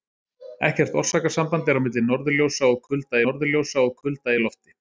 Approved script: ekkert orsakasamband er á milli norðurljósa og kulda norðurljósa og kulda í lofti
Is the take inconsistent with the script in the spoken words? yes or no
no